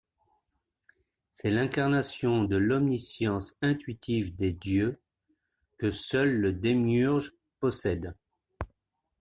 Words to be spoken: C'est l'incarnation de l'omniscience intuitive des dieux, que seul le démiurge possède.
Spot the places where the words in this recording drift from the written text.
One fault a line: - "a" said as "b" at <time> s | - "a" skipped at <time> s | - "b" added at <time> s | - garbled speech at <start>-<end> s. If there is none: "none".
none